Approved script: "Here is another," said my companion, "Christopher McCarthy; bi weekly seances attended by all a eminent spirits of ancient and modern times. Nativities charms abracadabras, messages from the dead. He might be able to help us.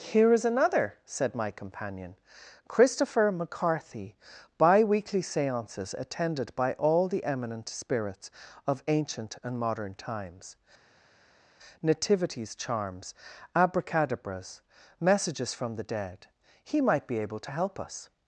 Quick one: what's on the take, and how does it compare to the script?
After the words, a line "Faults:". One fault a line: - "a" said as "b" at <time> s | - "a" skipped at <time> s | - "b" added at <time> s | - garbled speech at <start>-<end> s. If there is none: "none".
"Here is another," said my companion, "Christopher McCarthy; bi weekly seances attended by all the eminent spirits of ancient and modern times. Nativities charms abracadabras, messages from the dead. He might be able to help us.
Faults:
- "a" said as "the" at 7.1 s